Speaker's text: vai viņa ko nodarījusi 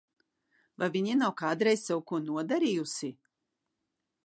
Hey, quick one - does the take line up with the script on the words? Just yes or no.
no